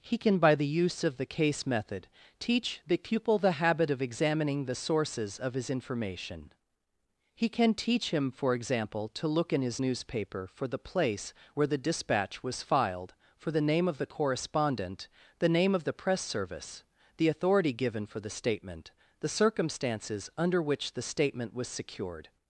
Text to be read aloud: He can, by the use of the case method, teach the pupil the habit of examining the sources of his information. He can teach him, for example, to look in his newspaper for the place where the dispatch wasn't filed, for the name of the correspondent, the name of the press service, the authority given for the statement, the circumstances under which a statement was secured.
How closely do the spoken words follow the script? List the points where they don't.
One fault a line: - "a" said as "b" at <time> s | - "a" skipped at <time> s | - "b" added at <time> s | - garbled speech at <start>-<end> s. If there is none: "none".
- "wasn't" said as "was" at 12.4 s
- "a" said as "the" at 20.9 s